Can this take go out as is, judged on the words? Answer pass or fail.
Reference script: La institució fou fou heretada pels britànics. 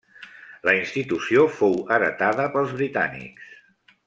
fail